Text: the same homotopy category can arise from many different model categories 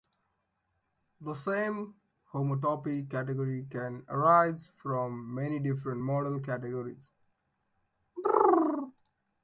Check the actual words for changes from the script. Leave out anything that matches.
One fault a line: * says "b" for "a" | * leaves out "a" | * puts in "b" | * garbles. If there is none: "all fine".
all fine